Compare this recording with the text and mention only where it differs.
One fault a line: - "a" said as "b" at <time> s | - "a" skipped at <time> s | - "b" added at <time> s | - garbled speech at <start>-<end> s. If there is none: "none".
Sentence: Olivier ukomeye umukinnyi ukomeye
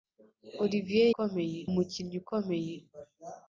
none